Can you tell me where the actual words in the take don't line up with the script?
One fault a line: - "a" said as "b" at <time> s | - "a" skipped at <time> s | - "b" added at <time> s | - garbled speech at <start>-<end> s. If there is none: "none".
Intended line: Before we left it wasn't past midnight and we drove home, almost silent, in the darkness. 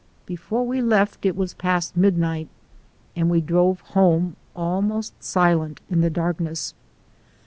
- "wasn't" said as "was" at 1.4 s